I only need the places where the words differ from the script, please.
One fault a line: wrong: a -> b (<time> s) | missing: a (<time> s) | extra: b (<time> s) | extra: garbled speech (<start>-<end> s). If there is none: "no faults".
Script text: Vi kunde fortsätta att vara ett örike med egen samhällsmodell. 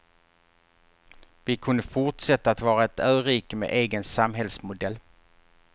no faults